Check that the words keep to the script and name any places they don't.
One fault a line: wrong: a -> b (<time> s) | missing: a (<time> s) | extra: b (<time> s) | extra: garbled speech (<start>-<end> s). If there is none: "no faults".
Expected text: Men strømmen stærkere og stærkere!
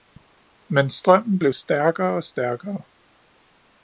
extra: blev (1.4 s)